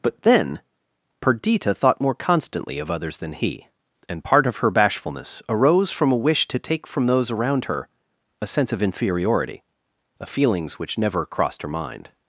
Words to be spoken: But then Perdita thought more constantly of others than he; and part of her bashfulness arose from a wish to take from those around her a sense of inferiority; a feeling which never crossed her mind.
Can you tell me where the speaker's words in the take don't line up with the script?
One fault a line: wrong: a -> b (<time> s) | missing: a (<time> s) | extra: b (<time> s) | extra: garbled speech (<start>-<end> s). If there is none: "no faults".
wrong: feeling -> feelings (10.3 s)